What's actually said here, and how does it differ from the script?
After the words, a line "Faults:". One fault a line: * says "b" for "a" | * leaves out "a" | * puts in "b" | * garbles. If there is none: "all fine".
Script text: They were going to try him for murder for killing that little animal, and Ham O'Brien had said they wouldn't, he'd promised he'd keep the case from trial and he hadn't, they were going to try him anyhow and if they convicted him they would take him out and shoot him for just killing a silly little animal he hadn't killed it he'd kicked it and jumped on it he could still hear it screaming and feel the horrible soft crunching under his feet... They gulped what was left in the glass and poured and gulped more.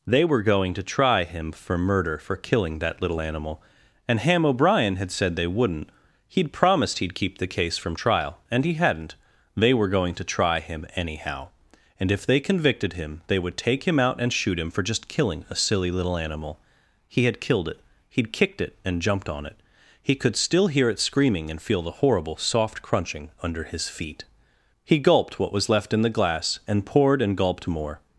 They were going to try him for murder for killing that little animal, and Ham O'Brien had said they wouldn't, he'd promised he'd keep the case from trial and he hadn't, they were going to try him anyhow and if they convicted him they would take him out and shoot him for just killing a silly little animal he had killed it he'd kicked it and jumped on it he could still hear it screaming and feel the horrible soft crunching under his feet... He gulped what was left in the glass and poured and gulped more.
Faults:
* says "had" for "hadn't"
* says "He" for "They"